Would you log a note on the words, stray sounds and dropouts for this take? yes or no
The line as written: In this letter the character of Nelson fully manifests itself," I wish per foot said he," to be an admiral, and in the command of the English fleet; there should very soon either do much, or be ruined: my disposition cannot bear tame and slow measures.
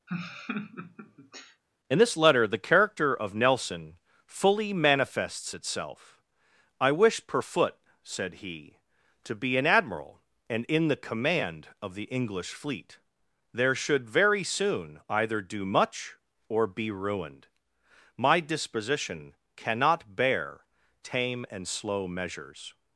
yes